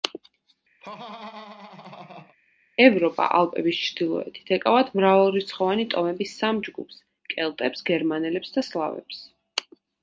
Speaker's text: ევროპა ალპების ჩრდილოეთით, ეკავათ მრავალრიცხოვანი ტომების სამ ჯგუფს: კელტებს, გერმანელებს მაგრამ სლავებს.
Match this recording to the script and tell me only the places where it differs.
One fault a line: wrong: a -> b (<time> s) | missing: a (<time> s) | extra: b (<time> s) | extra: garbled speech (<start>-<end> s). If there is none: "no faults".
wrong: მაგრამ -> და (8.6 s)